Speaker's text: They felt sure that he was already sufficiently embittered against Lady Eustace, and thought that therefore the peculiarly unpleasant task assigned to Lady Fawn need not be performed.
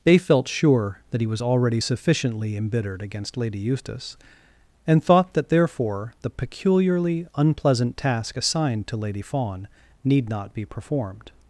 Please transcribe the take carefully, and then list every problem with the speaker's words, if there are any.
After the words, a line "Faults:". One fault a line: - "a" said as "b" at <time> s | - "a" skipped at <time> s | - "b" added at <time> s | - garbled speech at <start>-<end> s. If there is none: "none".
They felt sure that he was already sufficiently embittered against Lady Eustace, and thought that therefore the peculiarly unpleasant task assigned to Lady Fawn need not be performed.
Faults:
none